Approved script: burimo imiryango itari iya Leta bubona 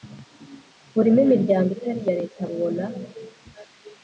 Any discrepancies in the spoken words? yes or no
no